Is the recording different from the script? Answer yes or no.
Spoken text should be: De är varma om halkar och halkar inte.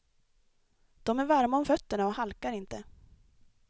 yes